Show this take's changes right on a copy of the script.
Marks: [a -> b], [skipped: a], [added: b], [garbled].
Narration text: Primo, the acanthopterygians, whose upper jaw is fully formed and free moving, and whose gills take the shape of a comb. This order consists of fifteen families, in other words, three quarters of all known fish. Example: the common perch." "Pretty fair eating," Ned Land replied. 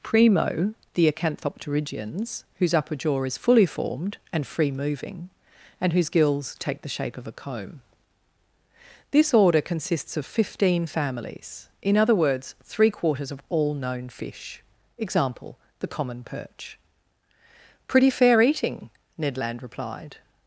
Primo, the acanthopterygians, whose upper jaw is fully formed and free moving, and whose gills take the shape of a comb. This order consists of fifteen families, in other words, three quarters of all known fish. Example: the common perch." "Pretty fair eating," Ned Land replied.